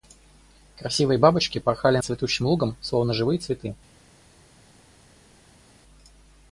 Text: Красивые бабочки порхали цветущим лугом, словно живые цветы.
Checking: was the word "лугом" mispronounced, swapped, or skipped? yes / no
no